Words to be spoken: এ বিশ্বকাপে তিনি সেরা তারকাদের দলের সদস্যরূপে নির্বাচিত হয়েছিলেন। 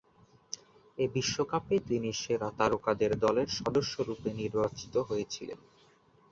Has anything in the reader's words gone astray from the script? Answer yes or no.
no